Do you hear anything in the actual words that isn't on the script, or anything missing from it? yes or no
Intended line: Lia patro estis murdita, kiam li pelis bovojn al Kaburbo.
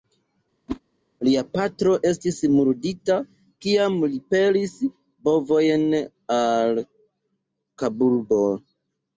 no